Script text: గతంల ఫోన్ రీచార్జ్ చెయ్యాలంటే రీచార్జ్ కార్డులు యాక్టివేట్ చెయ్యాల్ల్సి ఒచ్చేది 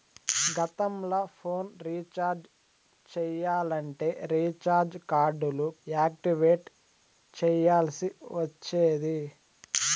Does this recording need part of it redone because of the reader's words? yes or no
no